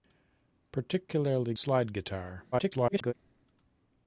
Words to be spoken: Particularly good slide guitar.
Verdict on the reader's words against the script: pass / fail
fail